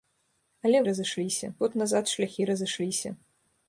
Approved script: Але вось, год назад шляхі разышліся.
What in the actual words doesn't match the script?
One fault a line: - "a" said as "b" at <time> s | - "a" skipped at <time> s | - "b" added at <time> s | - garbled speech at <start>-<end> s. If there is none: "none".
- "вось" said as "разышліся" at 0.9 s